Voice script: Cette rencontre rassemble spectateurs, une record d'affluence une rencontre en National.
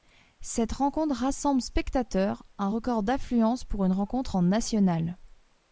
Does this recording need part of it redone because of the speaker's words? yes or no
yes